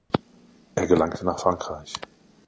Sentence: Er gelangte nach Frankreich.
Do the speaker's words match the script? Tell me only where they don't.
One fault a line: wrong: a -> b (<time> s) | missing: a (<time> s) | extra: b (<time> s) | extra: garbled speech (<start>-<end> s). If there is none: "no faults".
no faults